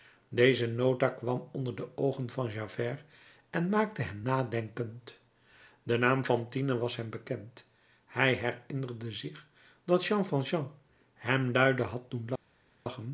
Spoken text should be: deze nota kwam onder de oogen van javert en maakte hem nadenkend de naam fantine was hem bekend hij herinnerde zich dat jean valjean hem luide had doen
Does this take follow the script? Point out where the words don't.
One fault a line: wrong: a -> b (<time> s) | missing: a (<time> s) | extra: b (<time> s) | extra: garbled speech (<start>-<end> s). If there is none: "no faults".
no faults